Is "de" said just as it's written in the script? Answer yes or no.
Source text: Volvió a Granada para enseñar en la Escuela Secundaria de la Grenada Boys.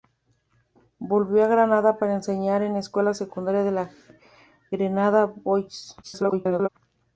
yes